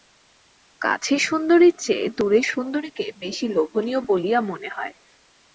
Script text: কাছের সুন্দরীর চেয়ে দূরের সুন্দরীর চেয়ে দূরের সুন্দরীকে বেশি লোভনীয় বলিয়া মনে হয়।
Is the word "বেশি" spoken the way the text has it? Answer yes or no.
yes